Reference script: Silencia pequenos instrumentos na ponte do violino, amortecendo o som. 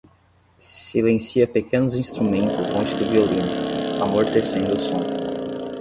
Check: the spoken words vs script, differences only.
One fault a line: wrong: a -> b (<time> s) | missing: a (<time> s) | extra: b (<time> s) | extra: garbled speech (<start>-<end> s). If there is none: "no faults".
missing: na (2.7 s)